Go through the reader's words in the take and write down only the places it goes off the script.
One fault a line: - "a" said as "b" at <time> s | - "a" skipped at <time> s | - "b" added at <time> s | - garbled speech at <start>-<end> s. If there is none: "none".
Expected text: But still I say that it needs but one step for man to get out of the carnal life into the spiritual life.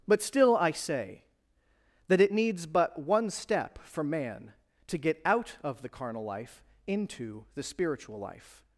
none